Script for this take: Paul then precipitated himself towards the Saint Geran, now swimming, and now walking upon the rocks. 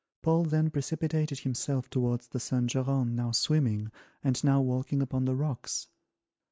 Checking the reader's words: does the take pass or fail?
pass